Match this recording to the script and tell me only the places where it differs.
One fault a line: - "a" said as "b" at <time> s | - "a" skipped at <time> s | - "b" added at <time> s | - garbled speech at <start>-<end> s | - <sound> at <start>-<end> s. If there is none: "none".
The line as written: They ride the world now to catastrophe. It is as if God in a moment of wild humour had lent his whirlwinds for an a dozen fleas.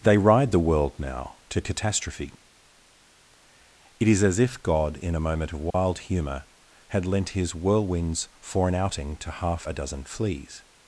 - dropout at 5.7-5.7 s
- "outing to half" added at 8.7 s